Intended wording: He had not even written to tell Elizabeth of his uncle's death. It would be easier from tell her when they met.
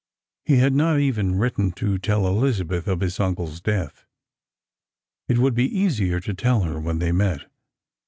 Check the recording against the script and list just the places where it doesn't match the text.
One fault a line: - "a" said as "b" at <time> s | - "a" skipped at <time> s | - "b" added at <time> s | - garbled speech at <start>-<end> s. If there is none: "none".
- "from" said as "to" at 6.2 s